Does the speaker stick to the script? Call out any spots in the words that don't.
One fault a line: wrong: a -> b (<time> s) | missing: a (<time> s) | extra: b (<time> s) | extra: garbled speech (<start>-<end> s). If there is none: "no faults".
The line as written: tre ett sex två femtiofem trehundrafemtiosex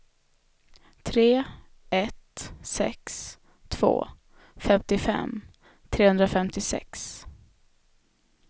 no faults